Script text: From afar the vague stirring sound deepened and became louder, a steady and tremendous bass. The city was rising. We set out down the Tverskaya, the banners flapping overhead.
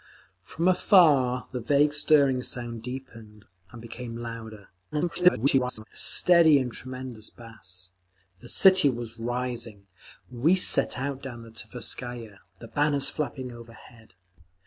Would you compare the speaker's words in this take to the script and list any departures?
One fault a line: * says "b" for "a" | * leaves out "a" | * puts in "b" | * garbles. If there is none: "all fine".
* garbles